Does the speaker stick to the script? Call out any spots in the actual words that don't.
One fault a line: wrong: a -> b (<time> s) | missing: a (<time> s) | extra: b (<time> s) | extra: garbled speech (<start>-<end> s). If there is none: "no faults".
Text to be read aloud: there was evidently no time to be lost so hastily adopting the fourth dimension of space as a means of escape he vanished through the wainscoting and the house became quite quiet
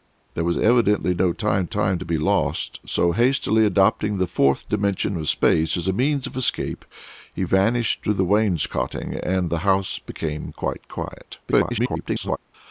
extra: time (1.6 s)
extra: garbled speech (11.5-12.4 s)